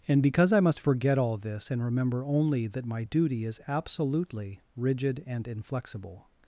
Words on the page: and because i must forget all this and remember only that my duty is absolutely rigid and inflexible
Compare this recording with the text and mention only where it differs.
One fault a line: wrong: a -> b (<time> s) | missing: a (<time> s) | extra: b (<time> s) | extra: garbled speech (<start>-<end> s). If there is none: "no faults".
no faults